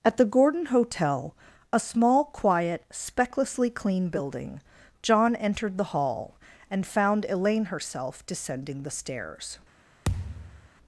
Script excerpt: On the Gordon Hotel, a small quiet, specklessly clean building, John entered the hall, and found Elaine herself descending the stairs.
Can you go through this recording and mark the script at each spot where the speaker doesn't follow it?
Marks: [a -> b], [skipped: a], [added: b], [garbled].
[On -> At] the Gordon Hotel, a small quiet, specklessly clean building, John entered the hall, and found Elaine herself descending the stairs.